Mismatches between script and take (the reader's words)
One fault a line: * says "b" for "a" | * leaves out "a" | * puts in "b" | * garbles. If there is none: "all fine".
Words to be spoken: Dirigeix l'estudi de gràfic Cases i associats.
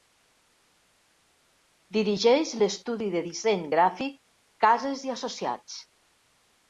* puts in "disseny"